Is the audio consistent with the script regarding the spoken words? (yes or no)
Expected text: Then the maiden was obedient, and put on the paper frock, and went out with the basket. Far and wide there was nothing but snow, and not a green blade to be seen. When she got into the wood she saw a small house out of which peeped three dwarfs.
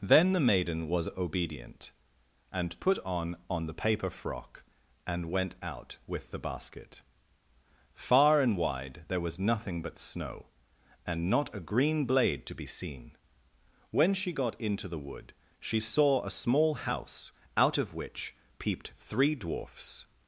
no